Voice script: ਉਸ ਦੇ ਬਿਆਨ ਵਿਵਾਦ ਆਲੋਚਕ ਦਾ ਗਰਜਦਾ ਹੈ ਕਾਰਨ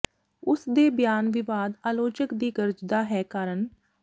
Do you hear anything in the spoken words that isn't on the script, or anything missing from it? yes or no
yes